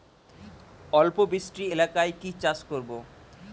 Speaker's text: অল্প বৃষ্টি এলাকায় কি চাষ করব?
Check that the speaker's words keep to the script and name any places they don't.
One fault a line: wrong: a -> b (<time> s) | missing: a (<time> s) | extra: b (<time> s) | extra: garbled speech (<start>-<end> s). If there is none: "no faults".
no faults